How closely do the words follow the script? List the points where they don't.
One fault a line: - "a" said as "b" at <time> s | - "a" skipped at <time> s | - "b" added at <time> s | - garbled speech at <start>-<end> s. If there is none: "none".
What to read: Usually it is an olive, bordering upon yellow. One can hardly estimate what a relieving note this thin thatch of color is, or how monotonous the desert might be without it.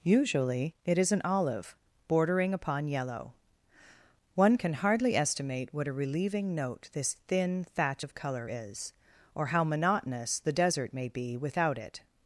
- "might" said as "may" at 10.9 s